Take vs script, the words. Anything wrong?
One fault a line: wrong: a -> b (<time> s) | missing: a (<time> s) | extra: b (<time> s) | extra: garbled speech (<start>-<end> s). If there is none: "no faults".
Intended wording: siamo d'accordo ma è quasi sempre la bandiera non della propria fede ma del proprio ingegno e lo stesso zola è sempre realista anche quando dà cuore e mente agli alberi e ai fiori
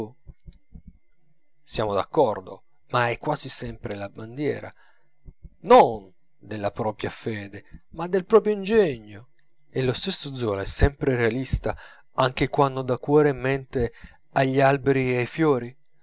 no faults